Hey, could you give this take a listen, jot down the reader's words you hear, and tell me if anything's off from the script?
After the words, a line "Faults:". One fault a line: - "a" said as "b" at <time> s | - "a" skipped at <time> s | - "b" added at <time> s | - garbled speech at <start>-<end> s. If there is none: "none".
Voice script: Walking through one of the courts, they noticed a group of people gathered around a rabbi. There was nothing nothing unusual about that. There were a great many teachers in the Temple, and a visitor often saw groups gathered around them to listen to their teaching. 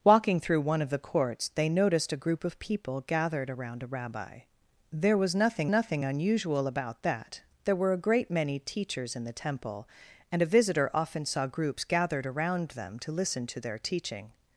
Walking through one of the courts, they noticed a group of people gathered around a rabbi. There was nothing nothing unusual about that. There were a great many teachers in the Temple, and a visitor often saw groups gathered around them to listen to their teaching.
Faults:
none